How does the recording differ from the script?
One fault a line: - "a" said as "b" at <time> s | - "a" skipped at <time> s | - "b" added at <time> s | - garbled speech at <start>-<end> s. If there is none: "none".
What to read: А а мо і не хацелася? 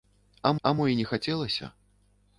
none